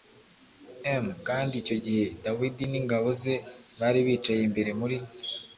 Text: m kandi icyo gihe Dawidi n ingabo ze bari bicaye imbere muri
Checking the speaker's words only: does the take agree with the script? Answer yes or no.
yes